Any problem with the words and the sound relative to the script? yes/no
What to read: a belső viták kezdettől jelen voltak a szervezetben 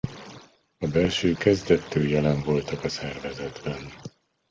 yes